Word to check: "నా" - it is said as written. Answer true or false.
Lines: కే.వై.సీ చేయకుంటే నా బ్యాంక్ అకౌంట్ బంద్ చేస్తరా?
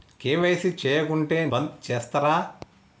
false